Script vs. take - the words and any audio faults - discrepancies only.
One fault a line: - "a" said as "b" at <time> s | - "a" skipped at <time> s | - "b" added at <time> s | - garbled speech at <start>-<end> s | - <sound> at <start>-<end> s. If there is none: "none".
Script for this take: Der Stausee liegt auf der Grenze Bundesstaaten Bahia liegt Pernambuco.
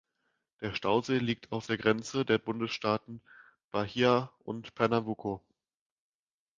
- "der" added at 2.2 s
- "liegt" said as "und" at 4.4 s